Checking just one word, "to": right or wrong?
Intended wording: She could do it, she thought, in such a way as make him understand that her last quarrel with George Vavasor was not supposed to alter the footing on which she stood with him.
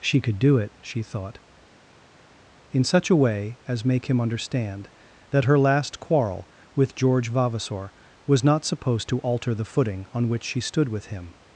right